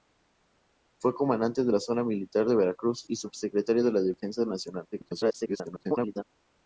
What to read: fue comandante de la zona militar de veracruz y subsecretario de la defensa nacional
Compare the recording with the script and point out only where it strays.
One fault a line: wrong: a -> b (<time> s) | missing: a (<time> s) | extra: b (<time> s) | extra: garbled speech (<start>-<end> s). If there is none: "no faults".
extra: garbled speech (4.9-6.2 s)